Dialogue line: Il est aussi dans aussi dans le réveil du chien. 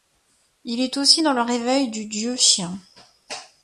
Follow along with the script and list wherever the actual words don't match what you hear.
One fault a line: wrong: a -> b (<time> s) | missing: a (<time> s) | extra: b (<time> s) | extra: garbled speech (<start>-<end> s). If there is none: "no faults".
missing: aussi dans (1.3 s)
extra: dieu (2.0 s)